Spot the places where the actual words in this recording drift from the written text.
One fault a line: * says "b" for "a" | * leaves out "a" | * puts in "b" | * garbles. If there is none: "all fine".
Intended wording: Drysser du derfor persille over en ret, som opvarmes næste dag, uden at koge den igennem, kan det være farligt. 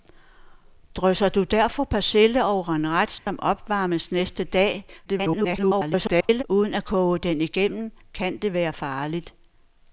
* garbles